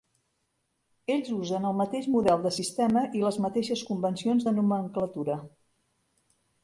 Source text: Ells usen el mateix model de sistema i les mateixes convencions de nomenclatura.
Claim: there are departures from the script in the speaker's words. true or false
false